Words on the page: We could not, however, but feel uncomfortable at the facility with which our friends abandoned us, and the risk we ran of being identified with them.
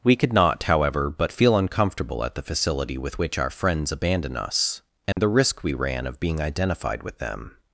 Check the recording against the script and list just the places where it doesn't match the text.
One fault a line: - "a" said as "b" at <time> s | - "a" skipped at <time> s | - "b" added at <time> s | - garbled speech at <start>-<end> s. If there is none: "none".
none